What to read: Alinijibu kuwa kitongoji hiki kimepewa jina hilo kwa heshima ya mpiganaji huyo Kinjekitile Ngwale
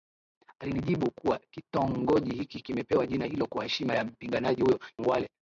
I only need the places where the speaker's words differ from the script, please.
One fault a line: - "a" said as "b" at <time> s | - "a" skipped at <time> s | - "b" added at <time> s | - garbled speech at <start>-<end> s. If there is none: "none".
- "Kinjekitile" skipped at 4.8 s